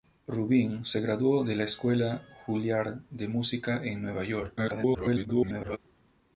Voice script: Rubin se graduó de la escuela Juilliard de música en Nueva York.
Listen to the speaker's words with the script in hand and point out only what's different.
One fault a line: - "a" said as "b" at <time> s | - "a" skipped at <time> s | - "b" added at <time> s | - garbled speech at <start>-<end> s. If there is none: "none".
- garbled speech at 4.6-5.8 s